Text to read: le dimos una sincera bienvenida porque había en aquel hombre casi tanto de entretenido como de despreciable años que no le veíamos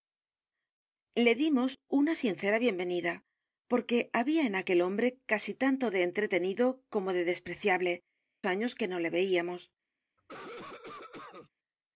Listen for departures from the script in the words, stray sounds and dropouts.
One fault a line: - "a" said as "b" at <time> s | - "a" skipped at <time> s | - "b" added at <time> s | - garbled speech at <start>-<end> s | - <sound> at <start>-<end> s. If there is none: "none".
- cough at 10.2-11.5 s